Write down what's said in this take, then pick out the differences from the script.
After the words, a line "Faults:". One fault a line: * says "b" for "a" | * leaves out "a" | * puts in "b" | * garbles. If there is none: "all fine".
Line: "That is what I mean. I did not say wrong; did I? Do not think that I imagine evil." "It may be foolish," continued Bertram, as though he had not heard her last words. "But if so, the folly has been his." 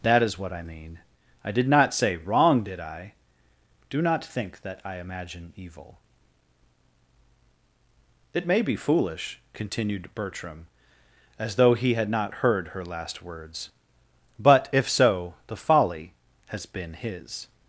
"That is what I mean. I did not say wrong; did I? Do not think that I imagine evil." "It may be foolish," continued Bertram, as though he had not heard her last words. "But if so, the folly has been his."
Faults:
all fine